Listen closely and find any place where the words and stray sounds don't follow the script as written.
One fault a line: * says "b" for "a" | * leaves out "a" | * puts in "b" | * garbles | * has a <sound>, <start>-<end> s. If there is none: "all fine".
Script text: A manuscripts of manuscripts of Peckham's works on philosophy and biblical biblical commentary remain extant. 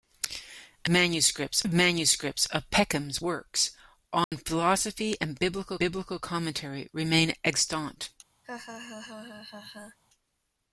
* has a dropout, 4.2-4.3 s
* has a laugh, 8.4-10.0 s